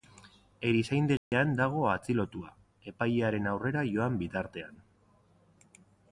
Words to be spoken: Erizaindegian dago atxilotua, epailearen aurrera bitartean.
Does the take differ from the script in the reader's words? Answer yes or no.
yes